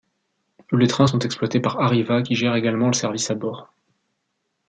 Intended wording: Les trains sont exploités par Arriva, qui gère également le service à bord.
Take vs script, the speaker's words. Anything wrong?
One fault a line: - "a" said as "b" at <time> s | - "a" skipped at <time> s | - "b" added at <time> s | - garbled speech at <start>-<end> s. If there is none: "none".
none